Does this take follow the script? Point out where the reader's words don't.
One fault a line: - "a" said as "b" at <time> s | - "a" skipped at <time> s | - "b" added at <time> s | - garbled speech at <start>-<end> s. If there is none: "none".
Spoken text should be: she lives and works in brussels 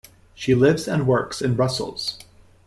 none